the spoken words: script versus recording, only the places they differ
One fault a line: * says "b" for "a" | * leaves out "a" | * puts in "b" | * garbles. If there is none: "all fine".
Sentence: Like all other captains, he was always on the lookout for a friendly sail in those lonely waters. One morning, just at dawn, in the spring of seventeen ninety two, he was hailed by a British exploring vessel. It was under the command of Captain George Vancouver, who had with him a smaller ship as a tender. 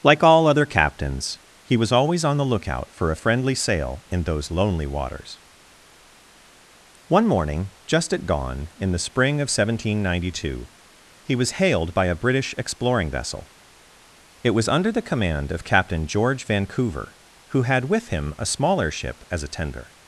all fine